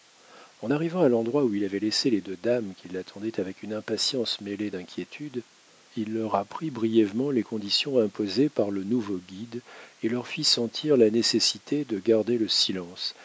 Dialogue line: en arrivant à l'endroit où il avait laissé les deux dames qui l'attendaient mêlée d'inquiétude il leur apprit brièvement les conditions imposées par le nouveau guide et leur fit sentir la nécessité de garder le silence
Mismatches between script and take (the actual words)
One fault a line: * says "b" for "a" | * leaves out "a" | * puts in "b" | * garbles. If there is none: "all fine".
* puts in "avec une impatience"